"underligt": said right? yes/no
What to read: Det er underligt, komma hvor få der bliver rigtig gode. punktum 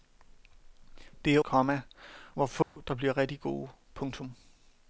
no